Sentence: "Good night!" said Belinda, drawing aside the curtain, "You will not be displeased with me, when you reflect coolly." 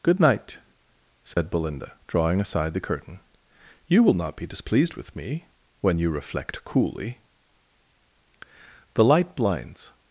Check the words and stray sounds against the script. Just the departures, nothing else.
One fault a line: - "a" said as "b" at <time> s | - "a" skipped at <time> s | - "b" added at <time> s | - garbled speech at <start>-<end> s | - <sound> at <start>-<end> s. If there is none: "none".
- dropout at 1.3-1.4 s
- "The light blinds" added at 8.9 s